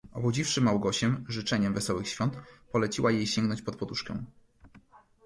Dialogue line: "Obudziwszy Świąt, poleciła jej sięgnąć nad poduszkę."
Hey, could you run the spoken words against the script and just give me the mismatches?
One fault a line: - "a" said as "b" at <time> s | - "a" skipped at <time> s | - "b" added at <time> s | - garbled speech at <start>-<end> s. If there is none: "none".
- "Małgosię życzeniem wesołych" added at 0.6 s
- "nad" said as "pod" at 3.6 s